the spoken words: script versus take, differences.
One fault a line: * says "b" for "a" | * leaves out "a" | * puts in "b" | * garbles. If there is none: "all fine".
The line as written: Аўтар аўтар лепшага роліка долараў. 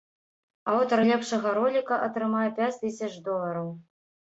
* leaves out "аўтар"
* puts in "атрымае пяць тысяч"